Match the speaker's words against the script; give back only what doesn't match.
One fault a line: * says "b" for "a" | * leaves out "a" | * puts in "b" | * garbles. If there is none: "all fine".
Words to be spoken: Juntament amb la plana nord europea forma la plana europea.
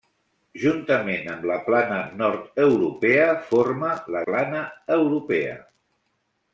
all fine